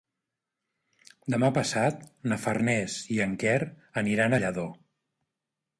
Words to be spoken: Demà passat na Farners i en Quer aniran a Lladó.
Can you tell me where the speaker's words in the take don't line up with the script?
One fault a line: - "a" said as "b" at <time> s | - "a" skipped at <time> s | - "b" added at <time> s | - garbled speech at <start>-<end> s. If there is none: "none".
none